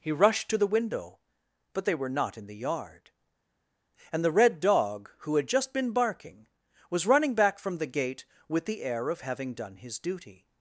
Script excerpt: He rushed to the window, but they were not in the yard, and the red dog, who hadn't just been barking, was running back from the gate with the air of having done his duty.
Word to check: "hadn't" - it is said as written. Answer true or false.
false